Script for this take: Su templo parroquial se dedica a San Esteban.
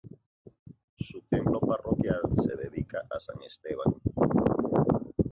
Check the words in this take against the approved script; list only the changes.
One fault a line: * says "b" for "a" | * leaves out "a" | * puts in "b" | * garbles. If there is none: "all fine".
all fine